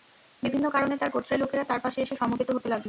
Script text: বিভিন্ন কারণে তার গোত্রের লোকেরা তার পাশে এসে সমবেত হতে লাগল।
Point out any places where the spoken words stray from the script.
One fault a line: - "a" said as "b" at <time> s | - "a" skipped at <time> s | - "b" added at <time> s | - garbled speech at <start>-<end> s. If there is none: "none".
none